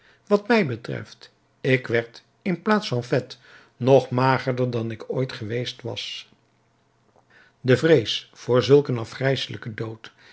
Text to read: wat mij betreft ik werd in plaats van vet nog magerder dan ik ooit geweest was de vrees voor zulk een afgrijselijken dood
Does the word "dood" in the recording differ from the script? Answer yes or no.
no